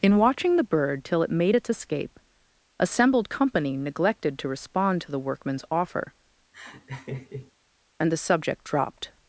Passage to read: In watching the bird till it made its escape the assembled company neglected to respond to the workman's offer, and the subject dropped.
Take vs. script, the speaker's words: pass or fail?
fail